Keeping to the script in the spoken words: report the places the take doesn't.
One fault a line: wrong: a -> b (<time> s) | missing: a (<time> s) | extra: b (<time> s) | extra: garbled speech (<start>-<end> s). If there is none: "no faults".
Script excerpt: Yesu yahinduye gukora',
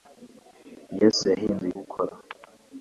no faults